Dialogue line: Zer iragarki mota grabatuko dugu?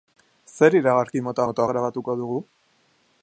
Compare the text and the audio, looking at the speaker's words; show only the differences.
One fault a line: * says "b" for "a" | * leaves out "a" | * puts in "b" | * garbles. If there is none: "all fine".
* puts in "mota"